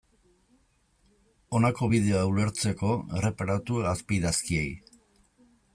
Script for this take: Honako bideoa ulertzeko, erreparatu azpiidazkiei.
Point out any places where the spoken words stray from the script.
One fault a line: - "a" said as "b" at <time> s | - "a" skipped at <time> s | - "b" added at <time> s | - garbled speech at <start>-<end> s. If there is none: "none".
none